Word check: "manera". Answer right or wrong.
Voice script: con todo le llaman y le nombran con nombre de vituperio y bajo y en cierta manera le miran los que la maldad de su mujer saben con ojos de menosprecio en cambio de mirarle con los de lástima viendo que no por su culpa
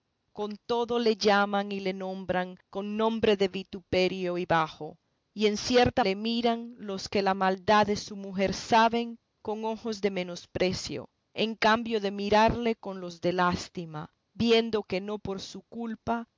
wrong